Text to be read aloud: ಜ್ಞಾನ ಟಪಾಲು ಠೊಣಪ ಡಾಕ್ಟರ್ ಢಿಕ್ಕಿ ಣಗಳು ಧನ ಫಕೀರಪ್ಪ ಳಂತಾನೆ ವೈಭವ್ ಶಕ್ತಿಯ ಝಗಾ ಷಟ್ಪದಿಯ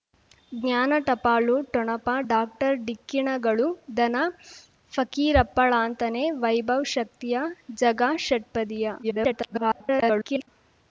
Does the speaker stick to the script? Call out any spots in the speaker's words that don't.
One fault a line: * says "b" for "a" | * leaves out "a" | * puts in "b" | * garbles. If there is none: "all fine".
* garbles